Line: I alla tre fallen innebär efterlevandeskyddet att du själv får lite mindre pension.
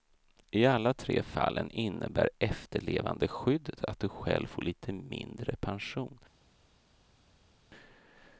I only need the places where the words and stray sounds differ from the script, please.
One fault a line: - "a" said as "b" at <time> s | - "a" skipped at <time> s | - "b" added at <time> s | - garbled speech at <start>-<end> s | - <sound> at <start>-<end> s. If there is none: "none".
none